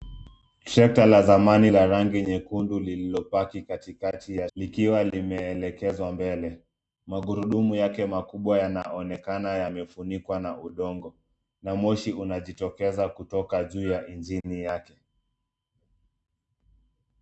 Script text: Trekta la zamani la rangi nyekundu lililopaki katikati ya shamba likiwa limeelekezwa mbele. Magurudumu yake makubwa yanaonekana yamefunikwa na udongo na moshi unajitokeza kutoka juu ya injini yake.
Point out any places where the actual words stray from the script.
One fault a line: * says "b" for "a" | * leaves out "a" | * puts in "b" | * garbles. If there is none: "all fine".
* leaves out "shamba"